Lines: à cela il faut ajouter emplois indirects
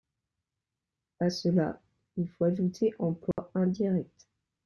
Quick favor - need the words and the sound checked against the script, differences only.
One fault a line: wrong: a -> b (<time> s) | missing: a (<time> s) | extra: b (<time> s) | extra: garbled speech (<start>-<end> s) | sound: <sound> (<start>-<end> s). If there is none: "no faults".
sound: dropout (3.3-3.4 s)